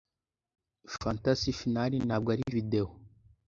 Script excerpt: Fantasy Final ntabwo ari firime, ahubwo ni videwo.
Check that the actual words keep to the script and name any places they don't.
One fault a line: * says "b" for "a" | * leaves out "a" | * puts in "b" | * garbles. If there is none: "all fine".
* leaves out "firime ahubwo ni"